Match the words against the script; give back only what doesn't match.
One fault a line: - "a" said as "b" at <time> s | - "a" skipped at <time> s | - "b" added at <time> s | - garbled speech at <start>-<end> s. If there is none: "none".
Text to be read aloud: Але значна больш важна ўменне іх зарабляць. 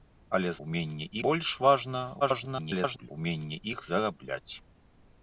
- "значна" said as "ўменне" at 0.6 s
- garbled speech at 2.2-3.1 s